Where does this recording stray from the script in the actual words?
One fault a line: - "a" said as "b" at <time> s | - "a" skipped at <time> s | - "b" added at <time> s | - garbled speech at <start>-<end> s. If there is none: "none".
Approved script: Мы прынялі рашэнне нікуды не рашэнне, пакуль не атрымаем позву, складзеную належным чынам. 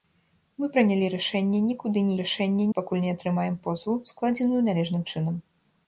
none